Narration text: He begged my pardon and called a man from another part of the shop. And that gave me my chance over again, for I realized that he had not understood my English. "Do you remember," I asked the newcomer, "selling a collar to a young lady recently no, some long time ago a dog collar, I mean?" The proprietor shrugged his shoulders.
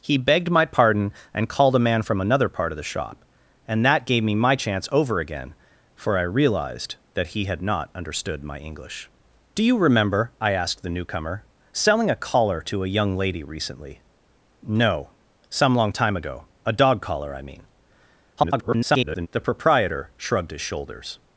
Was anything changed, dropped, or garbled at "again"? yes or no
no